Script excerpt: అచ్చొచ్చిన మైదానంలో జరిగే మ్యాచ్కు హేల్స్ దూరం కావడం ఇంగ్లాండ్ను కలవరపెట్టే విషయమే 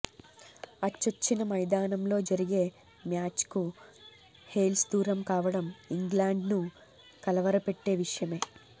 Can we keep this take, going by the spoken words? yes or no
yes